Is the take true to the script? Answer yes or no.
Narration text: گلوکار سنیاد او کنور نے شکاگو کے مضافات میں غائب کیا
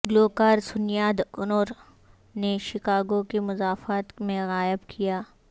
no